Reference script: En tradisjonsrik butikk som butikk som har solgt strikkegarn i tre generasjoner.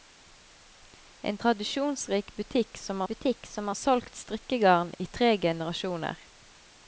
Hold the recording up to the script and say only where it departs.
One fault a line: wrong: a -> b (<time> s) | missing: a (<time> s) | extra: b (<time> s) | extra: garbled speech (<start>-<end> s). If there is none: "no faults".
no faults